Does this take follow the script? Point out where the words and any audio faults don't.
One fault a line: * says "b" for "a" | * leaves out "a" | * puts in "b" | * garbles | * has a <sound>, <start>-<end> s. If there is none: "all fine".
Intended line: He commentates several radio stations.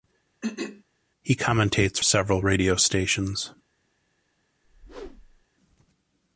* has a throat clearing, 0.4-0.8 s
* has a whoosh, 4.6-5.4 s